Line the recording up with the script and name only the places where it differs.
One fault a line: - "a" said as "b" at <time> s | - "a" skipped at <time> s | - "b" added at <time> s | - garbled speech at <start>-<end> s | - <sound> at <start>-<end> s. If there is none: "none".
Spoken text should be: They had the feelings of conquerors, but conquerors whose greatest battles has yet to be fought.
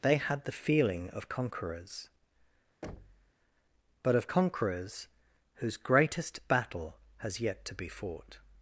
- "feelings" said as "feeling" at 0.5 s
- thud at 2.8-3.3 s
- "of" added at 4.1 s
- "battles" said as "battle" at 6.5 s